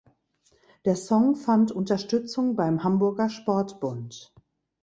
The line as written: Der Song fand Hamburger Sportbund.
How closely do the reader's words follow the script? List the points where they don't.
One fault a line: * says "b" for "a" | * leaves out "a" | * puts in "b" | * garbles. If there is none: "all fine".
* puts in "Unterstützung beim"